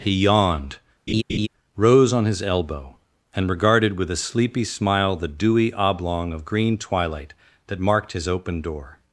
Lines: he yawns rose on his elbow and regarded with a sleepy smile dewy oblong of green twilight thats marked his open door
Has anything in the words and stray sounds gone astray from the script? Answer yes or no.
yes